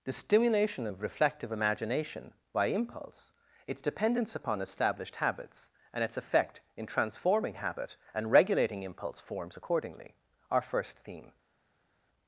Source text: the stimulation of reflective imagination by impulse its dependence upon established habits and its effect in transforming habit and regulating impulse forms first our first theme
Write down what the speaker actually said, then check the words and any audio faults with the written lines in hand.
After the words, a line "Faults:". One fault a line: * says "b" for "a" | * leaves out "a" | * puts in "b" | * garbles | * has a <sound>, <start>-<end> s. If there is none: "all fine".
the stimulation of reflective imagination by impulse its dependence upon established habits and its effect in transforming habit and regulating impulse forms accordingly our first theme
Faults:
* says "accordingly" for "first"